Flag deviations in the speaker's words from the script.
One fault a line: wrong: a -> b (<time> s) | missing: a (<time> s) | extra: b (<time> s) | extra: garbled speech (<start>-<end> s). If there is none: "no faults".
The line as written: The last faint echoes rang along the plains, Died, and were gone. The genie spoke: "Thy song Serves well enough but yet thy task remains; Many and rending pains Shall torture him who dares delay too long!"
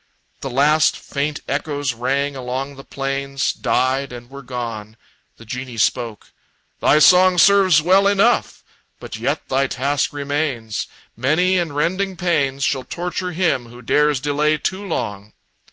no faults